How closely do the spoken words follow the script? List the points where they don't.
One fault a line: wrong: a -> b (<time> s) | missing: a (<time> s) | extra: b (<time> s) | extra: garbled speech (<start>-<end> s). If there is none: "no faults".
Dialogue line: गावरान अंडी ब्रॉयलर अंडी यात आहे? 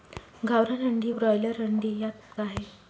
no faults